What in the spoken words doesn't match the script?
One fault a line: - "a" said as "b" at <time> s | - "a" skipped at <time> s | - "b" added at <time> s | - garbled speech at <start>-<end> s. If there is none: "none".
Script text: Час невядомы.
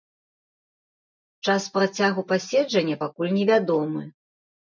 - "працягу паседжання пакуль" added at 1.8 s